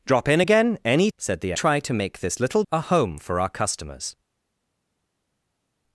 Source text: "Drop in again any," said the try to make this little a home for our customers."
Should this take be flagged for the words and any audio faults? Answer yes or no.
no